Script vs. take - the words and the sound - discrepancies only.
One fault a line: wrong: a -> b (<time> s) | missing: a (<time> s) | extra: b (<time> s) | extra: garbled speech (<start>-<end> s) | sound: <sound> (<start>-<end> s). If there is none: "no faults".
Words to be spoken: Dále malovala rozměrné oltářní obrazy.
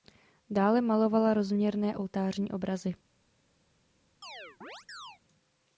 sound: chirp (4.2-5.2 s)